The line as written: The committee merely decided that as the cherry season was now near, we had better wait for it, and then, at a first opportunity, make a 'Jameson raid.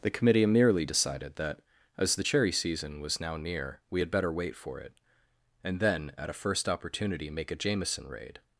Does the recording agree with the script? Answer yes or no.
yes